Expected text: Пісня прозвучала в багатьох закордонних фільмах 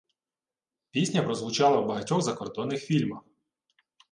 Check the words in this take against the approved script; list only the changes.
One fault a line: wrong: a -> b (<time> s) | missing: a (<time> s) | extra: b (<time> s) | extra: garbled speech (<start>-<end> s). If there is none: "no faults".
no faults